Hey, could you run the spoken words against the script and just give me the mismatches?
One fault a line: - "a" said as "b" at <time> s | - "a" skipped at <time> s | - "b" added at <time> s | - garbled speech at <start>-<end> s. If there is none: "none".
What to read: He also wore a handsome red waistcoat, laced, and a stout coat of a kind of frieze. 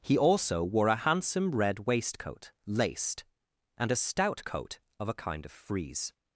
none